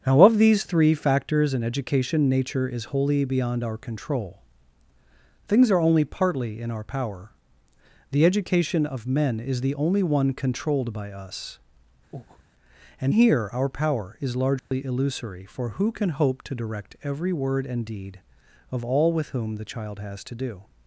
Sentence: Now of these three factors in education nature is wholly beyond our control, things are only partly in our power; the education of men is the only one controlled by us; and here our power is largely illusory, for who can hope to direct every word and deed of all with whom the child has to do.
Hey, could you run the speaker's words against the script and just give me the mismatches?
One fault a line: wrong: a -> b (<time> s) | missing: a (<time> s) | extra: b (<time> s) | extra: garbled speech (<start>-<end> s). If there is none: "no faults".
no faults